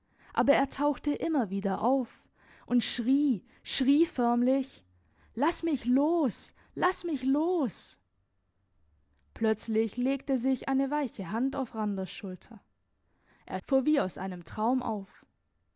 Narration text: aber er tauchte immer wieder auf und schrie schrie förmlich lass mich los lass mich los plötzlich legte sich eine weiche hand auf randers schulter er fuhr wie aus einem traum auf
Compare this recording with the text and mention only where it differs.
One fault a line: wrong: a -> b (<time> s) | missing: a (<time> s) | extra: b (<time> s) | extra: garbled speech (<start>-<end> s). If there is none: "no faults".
no faults